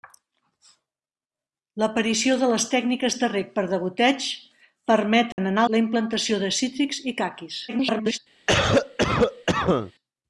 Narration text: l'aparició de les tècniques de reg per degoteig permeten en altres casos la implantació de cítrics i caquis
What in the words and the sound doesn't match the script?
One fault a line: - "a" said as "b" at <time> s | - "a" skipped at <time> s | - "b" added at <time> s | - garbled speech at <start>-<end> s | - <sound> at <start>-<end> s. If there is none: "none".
- dropout at 5.3-5.4 s
- "altres casos" skipped at 5.6 s
- garbled speech at 7.7-8.2 s
- cough at 8.5-9.9 s